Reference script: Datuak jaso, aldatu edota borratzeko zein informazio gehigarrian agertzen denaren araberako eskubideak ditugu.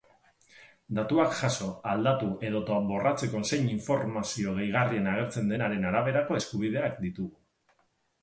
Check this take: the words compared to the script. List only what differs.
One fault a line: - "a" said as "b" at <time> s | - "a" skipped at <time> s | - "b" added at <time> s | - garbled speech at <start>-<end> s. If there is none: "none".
none